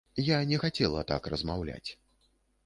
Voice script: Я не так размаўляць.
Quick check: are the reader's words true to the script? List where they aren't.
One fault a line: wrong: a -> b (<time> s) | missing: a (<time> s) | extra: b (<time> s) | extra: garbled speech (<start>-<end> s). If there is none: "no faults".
extra: хацела (0.6 s)